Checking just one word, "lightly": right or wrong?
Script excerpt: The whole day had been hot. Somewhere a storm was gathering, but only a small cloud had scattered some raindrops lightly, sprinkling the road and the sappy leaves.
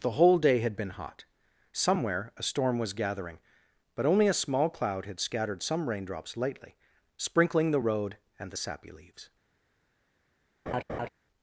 right